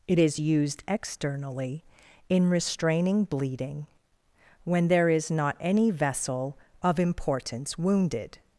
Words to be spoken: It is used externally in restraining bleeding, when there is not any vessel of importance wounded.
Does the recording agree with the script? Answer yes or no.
yes